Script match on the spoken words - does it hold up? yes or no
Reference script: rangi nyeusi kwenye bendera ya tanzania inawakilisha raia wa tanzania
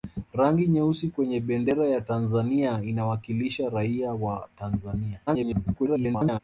no